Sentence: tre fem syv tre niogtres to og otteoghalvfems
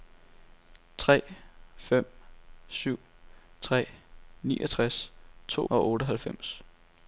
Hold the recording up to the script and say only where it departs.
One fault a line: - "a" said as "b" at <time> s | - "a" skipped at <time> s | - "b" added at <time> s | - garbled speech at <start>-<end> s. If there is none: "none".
none